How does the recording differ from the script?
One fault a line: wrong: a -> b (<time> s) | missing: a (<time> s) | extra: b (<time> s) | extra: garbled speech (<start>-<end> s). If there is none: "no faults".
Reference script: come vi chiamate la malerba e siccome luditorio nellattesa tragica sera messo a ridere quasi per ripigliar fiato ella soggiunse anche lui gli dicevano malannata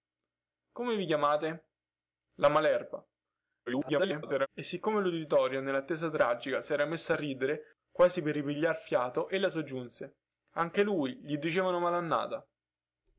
extra: garbled speech (3.7-4.5 s)